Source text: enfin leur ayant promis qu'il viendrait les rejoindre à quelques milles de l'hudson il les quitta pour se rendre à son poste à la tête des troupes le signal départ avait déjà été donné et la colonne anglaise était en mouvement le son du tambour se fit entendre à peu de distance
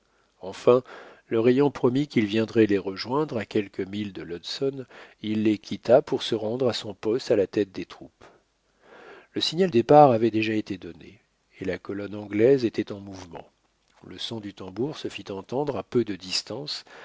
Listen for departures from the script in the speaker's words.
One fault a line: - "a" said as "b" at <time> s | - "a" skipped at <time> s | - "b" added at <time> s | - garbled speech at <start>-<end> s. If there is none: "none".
none